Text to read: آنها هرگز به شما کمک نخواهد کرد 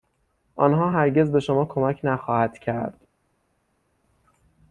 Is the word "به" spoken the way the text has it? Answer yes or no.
yes